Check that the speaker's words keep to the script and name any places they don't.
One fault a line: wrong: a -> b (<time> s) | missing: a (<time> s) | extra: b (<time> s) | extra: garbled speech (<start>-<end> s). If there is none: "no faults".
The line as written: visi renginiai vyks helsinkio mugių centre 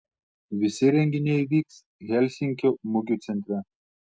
no faults